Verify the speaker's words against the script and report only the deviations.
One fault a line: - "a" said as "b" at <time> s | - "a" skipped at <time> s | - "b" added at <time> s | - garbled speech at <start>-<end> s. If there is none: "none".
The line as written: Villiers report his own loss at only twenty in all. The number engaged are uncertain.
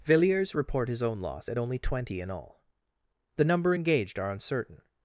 none